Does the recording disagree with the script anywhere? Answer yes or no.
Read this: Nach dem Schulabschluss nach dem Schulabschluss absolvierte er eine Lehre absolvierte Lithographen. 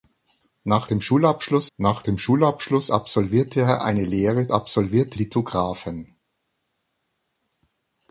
no